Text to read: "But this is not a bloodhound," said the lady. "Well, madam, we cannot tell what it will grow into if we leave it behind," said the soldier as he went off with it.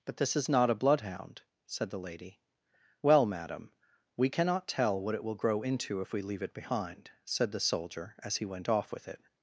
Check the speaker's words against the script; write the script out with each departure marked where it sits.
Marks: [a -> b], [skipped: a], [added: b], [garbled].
"But this is not a bloodhound," said the lady. "Well, madam, we cannot tell what it will grow into if we leave it behind," said the soldier as he went off with it.